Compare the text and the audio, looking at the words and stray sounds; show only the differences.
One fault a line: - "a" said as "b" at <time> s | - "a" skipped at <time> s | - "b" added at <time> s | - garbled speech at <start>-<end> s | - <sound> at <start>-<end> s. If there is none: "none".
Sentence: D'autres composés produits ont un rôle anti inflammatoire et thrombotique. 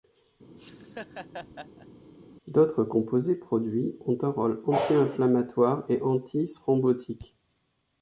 - laugh at 0.6-1.9 s
- "anti" added at 6.0 s